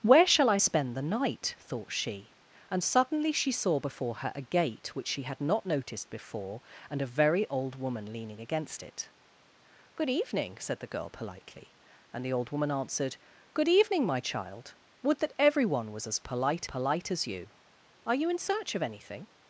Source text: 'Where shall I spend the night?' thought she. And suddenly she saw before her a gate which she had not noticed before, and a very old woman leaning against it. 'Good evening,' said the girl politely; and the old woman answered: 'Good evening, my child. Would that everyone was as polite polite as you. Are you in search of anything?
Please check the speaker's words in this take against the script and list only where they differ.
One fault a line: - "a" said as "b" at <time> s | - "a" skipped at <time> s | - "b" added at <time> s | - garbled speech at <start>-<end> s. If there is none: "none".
none